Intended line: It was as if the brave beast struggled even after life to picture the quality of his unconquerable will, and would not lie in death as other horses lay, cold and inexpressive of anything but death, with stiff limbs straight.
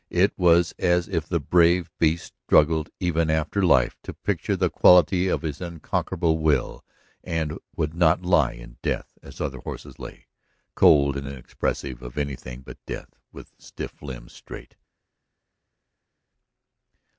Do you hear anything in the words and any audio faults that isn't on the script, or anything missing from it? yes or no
no